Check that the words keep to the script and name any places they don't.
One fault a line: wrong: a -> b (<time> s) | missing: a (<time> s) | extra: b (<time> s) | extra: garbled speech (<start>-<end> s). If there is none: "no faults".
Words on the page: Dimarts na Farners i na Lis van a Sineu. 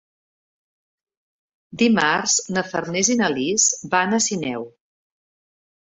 no faults